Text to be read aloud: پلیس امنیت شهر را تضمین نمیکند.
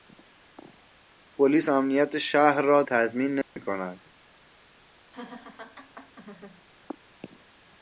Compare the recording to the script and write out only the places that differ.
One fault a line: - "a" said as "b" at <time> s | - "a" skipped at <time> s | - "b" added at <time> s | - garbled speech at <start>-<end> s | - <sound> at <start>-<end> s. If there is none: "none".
- dropout at 3.4-3.6 s
- laugh at 5.1-6.6 s